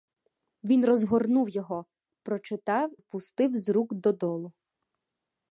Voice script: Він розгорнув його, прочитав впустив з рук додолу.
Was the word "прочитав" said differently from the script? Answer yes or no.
no